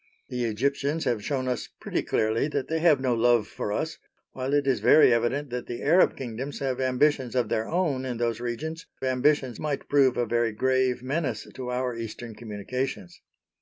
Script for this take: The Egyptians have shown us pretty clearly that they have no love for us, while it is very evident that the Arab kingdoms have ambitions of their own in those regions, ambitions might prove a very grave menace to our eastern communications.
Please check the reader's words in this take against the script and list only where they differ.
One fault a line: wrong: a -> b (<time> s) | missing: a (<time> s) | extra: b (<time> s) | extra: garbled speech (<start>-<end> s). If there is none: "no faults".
no faults